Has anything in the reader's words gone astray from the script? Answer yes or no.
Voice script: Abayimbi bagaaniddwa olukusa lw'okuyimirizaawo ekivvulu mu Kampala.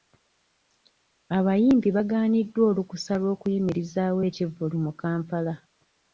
no